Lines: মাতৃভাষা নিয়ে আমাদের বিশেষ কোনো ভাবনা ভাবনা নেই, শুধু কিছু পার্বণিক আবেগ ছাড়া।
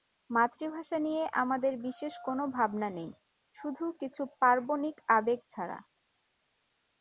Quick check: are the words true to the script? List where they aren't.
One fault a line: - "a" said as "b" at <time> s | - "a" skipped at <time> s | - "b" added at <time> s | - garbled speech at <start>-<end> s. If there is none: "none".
- "ভাবনা" skipped at 2.9 s